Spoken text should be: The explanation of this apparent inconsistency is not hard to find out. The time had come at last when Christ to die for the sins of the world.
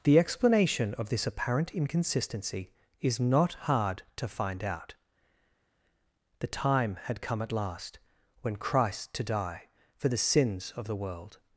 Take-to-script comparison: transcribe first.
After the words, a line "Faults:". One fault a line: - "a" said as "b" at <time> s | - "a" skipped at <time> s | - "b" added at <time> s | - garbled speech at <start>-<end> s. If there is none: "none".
The explanation of this apparent inconsistency is not hard to find out. The time had come at last when Christ to die for the sins of the world.
Faults:
none